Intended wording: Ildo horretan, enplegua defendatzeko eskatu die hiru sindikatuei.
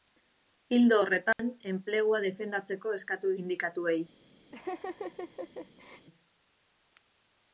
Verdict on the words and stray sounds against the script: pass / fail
fail